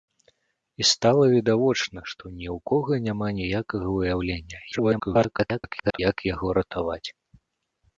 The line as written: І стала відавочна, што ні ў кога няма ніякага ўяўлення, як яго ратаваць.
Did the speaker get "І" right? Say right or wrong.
right